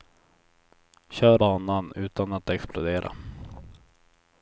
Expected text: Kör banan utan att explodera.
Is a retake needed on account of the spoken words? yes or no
no